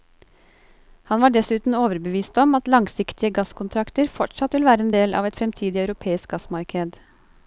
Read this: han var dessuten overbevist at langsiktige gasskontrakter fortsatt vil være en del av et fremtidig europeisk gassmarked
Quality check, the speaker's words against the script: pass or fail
fail